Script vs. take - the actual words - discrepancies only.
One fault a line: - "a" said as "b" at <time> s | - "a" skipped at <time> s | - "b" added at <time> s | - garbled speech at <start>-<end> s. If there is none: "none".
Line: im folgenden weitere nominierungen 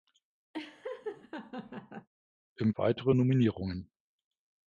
- "folgenden" skipped at 2.7 s